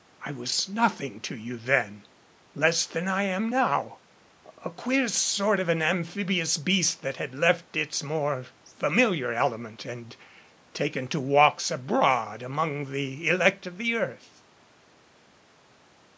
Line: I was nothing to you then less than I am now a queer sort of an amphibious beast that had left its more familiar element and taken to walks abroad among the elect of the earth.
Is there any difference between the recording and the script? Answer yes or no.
no